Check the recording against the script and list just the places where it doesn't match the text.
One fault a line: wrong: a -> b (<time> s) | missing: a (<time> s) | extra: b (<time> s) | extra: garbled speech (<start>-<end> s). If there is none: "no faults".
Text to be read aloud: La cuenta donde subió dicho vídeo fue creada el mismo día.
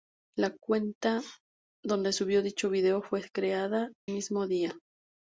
missing: el (3.9 s)